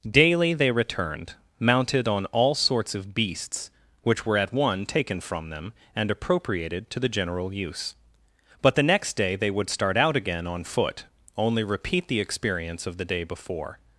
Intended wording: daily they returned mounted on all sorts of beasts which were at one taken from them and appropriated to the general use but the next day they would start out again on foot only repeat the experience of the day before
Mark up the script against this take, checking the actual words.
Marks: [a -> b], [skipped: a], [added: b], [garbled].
daily they returned mounted on all sorts of beasts which were at one taken from them and appropriated to the general use but the next day they would start out again on foot only repeat the experience of the day before